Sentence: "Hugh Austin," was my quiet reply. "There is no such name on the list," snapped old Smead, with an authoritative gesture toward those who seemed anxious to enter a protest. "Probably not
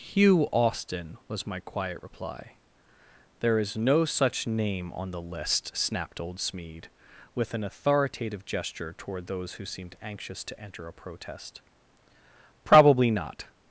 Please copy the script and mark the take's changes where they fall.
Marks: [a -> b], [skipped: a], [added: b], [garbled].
"Hugh Austin," was my quiet reply. "There is no such name on the list," snapped old Smead, with an authoritative gesture toward those who seemed anxious to enter a protest. "Probably not